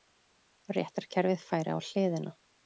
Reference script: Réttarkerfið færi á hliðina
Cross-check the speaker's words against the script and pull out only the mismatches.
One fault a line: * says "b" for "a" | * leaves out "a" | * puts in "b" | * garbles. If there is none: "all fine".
all fine